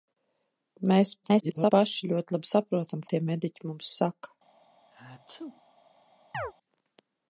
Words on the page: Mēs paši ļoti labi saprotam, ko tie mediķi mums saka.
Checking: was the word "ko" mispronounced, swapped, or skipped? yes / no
yes